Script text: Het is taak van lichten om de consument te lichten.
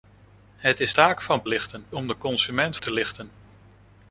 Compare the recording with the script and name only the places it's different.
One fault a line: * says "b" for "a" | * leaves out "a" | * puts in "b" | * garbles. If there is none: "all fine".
all fine